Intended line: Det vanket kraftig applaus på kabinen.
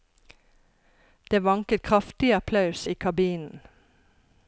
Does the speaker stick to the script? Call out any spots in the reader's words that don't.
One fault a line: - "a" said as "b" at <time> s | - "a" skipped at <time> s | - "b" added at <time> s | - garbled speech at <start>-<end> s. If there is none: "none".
- "på" said as "i" at 2.8 s